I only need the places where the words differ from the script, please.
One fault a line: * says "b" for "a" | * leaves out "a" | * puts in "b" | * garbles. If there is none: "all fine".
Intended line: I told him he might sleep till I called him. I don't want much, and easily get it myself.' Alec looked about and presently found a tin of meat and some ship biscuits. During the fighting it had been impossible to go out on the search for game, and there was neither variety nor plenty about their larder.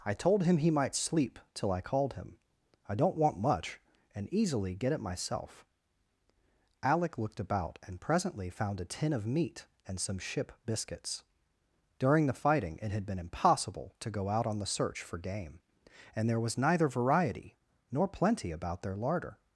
all fine